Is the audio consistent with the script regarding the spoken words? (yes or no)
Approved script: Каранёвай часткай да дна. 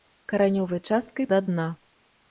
yes